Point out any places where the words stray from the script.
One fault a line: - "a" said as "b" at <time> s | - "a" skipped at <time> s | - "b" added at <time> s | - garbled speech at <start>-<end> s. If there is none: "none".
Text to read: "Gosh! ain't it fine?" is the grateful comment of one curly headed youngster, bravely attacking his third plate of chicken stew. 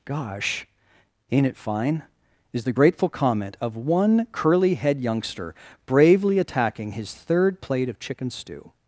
- "headed" said as "head" at 4.7 s